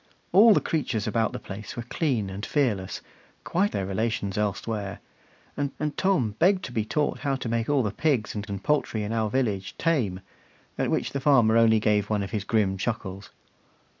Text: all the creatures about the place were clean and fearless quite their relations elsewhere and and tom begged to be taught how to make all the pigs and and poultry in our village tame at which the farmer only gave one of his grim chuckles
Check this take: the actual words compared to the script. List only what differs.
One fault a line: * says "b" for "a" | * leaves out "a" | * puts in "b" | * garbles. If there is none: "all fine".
all fine